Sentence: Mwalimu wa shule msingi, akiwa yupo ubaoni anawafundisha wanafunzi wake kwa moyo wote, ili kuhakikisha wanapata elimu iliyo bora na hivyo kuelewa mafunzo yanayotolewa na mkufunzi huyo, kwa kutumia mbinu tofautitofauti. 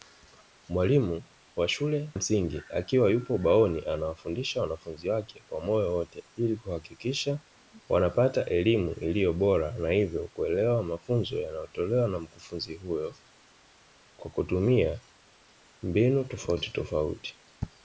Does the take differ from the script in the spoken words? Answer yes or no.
no